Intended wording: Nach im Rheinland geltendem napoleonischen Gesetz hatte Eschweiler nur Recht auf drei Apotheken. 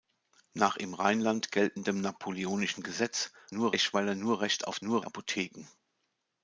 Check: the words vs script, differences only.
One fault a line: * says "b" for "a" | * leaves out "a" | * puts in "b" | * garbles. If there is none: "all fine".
* says "nur" for "hatte"
* says "nur" for "drei"